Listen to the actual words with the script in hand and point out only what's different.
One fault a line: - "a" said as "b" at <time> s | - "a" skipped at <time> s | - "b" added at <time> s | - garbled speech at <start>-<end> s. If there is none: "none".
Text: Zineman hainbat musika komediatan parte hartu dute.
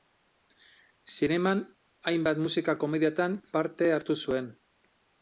- "dute" said as "zuen" at 4.3 s